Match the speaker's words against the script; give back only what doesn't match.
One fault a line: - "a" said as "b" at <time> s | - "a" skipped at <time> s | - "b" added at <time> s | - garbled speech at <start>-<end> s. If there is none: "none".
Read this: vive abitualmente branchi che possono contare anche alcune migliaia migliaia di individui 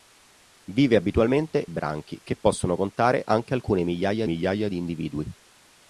none